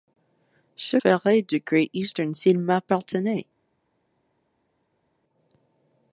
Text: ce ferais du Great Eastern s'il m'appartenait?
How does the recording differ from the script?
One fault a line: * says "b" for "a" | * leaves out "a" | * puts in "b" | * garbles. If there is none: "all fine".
all fine